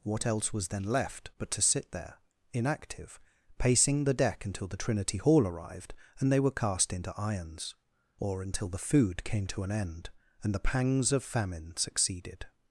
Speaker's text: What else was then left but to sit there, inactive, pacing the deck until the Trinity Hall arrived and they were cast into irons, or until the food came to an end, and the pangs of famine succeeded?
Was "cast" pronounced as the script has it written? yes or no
yes